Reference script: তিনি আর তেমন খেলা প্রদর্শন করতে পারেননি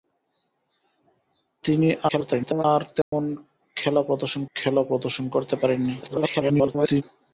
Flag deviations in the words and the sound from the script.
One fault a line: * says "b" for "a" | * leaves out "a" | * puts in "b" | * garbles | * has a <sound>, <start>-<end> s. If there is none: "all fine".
* garbles
* has a dropout, 3.0-3.1 s
* puts in "খেলা প্রদর্শন"
* garbles